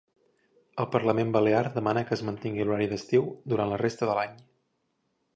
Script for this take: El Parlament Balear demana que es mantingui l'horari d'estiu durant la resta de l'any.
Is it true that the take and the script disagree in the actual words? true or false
false